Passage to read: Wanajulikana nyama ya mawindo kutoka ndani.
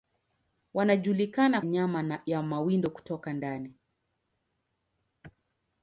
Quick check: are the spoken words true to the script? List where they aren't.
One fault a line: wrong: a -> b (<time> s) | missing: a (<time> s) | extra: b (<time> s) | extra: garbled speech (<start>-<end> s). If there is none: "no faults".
no faults